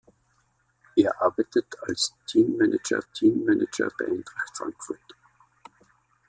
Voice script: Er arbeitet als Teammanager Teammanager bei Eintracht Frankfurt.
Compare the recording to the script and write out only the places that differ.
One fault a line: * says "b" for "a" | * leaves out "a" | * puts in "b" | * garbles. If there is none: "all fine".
all fine